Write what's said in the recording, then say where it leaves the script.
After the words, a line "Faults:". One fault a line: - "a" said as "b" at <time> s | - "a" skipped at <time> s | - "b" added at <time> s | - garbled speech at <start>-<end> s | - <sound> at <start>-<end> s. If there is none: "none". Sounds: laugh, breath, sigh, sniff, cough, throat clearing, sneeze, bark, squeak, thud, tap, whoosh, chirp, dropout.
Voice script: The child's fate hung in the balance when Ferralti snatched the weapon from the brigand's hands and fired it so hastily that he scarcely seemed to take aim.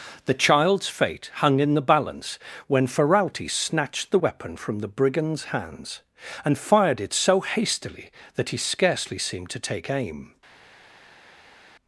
The child's fate hung in the balance when Ferralti snatched the weapon from the brigand's hands and fired it so hastily that he scarcely seemed to take aim.
Faults:
none